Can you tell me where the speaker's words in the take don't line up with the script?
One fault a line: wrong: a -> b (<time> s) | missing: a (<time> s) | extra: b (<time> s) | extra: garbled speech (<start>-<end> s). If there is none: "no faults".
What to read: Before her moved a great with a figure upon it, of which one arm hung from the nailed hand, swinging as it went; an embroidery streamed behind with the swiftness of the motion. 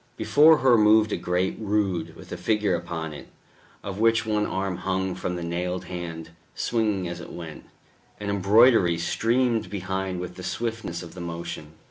extra: rood (1.6 s)